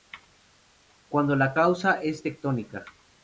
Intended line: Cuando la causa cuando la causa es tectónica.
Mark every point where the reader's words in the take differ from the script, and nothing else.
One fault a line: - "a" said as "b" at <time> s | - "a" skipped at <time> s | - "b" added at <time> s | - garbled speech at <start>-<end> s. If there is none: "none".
- "cuando la causa" skipped at 2.0 s